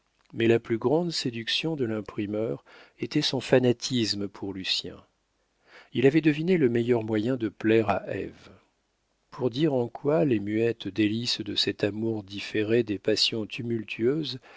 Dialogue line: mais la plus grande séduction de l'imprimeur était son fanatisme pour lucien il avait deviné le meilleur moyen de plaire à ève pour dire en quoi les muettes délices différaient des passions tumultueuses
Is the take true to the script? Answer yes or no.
no